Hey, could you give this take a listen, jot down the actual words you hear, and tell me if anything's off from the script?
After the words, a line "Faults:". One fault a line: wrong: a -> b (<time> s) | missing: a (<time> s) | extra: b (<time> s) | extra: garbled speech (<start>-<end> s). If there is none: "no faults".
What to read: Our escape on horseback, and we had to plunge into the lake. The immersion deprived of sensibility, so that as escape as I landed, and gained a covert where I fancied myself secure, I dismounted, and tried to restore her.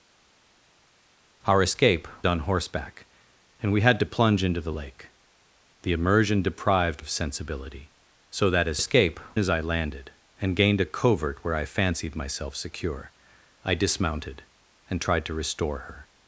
Our escape on horseback, and we had to plunge into the lake. The immersion deprived of sensibility, so that as escape as I landed, and gained a covert where I fancied myself secure, I dismounted, and tried to restore her.
Faults:
no faults